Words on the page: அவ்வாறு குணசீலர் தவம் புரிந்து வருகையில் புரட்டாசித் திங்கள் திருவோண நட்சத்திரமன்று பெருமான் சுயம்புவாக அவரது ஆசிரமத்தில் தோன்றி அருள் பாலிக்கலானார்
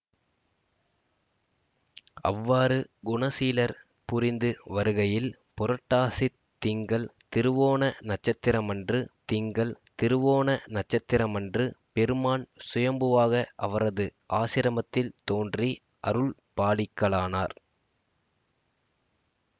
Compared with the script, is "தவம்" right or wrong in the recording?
wrong